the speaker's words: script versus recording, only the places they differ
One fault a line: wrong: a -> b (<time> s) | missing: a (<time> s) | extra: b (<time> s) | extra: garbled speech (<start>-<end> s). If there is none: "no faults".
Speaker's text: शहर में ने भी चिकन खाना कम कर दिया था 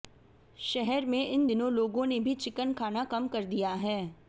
extra: इन दिनों लोगों (1.3 s)
wrong: था -> है (3.7 s)